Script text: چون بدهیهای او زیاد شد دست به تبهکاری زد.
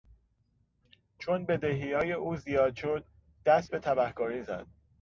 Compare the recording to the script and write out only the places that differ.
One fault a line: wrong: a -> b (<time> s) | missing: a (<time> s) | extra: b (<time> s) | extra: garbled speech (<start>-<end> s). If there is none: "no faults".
no faults